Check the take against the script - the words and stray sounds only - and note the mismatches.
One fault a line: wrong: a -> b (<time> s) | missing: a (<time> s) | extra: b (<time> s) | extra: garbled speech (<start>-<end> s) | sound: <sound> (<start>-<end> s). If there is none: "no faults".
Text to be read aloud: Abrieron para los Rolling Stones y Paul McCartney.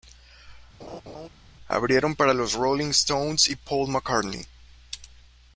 sound: laugh (0.8-1.3 s)